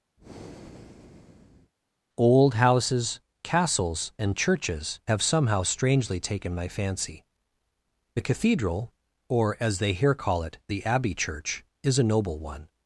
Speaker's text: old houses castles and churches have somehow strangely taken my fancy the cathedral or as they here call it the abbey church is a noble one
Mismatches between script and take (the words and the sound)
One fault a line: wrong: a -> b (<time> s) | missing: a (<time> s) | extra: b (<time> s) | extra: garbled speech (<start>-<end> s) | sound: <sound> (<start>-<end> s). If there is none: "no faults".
sound: breath (0.2-1.7 s)